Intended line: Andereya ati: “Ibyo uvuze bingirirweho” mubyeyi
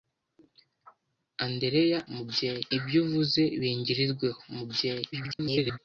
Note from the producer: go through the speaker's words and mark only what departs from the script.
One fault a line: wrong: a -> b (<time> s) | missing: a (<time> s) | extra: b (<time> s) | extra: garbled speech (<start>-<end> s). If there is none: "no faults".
wrong: ati -> mubyeyi (2.1 s)
extra: garbled speech (5.1-5.8 s)